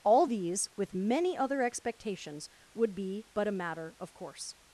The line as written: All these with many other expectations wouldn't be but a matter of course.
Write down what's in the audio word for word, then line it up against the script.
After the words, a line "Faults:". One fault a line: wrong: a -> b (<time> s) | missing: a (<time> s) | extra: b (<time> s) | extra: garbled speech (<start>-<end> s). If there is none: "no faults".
All these with many other expectations would be but a matter of course.
Faults:
wrong: wouldn't -> would (2.7 s)